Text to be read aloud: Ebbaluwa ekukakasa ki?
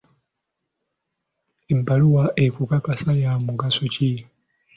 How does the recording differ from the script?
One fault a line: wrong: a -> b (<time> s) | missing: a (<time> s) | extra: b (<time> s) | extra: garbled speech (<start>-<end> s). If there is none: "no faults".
extra: ya mugaso (3.2 s)